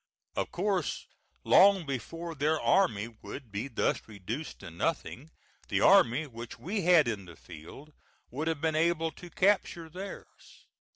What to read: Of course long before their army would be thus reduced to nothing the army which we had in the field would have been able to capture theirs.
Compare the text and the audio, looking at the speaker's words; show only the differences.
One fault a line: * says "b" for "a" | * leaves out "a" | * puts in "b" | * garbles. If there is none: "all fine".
all fine